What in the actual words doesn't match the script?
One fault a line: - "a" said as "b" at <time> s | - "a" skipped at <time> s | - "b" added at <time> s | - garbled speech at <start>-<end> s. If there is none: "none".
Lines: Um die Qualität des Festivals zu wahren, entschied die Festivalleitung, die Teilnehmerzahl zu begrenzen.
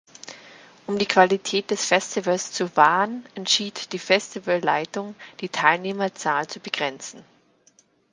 none